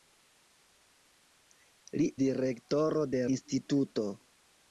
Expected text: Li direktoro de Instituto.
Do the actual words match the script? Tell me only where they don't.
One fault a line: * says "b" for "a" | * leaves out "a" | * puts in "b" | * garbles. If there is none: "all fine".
all fine